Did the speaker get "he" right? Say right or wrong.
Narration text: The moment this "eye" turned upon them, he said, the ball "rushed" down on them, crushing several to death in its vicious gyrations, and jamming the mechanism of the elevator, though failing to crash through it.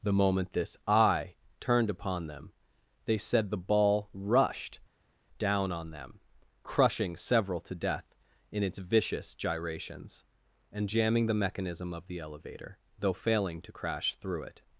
wrong